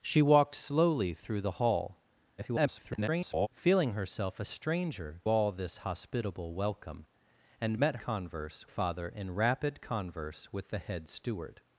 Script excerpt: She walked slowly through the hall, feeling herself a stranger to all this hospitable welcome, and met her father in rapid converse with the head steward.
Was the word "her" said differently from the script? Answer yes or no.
yes